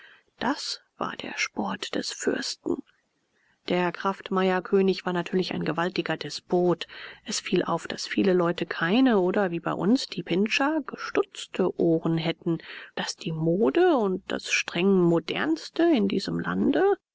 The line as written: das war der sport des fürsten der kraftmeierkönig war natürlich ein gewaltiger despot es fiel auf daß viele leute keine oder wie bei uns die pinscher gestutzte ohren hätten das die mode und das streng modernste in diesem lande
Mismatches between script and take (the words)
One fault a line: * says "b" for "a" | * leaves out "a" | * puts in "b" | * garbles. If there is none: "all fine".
all fine